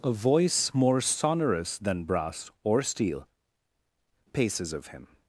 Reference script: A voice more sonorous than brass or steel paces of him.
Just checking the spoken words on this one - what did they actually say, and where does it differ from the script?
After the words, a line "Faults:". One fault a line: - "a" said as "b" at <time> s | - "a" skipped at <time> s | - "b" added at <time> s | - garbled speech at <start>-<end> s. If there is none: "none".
A voice more sonorous than brass or steel paces of him.
Faults:
none